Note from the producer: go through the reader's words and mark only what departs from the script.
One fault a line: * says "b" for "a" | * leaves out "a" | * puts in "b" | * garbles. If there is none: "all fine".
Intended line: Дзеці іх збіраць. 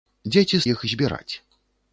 all fine